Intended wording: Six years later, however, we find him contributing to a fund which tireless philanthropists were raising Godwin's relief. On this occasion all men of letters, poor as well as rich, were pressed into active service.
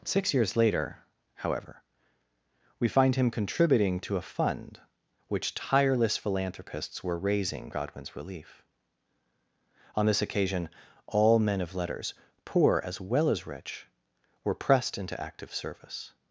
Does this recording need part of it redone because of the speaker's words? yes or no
no